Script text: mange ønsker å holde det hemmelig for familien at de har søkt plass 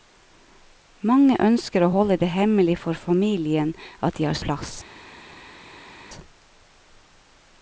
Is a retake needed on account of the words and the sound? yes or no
yes